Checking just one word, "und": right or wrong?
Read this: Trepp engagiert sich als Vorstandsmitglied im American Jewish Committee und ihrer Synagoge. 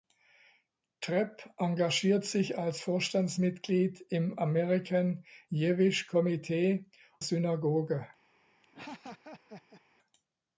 wrong